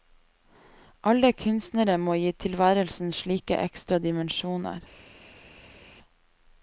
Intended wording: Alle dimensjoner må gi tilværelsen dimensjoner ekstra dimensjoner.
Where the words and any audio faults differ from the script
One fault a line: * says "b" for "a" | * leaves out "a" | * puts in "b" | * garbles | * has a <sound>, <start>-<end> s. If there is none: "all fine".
* says "kunstnere" for "dimensjoner"
* says "slike" for "dimensjoner"